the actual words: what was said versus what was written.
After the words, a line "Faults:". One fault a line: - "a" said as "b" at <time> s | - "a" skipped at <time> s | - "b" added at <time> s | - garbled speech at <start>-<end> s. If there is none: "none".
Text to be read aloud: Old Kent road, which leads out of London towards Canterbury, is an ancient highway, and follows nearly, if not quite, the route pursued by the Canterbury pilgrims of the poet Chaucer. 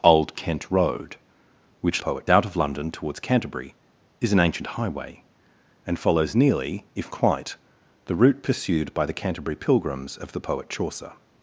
Old Kent road, which poet out of London towards Canterbury, is an ancient highway, and follows nearly, if quite, the route pursued by the Canterbury pilgrims of the poet Chaucer.
Faults:
- "leads" said as "poet" at 2.0 s
- "not" skipped at 7.1 s